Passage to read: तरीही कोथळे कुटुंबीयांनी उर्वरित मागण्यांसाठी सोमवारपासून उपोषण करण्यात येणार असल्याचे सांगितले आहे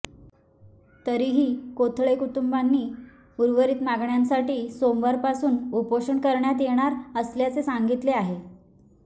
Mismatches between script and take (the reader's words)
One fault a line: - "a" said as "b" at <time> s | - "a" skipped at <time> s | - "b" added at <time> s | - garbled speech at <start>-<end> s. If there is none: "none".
none